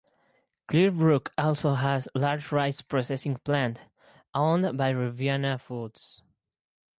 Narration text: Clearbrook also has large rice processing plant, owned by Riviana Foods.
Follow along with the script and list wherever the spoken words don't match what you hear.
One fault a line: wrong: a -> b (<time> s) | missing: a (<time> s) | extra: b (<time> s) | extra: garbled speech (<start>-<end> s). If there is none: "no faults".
no faults